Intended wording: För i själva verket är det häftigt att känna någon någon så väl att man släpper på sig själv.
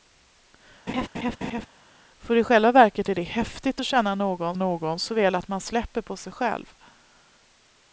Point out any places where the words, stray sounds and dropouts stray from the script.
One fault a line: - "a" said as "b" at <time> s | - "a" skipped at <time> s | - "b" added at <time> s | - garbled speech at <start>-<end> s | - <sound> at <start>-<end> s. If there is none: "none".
- laugh at 0.9-1.7 s